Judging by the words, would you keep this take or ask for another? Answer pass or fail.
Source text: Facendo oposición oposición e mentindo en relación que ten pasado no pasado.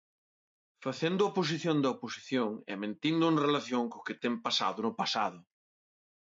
fail